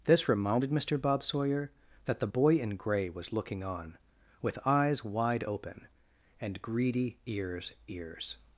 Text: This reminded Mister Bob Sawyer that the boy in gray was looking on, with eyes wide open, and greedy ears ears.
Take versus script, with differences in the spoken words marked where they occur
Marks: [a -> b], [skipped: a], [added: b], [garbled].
This reminded Mister Bob Sawyer that the boy in gray was looking on, with eyes wide open, and greedy ears ears.